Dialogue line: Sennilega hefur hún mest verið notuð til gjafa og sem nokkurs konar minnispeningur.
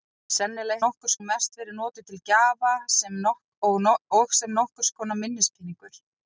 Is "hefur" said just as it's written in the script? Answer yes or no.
no